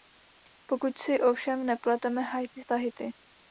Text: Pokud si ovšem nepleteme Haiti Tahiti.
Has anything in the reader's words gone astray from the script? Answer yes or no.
no